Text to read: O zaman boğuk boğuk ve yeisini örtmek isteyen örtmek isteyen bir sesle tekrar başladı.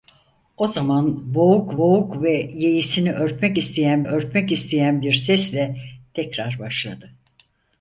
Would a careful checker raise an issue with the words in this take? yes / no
no